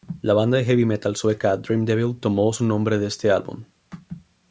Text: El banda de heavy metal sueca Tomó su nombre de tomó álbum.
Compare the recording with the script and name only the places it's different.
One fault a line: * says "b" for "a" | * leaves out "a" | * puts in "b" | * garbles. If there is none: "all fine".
* says "La" for "El"
* puts in "Dream Evil"
* says "este" for "tomó"